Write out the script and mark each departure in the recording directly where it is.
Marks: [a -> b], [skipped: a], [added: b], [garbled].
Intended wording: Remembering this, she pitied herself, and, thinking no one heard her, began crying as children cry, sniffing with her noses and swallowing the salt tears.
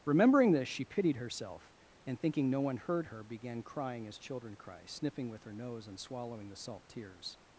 Remembering this, she pitied herself, and, thinking no one heard her, began crying as children cry, sniffing with her [noses -> nose] and swallowing the salt tears.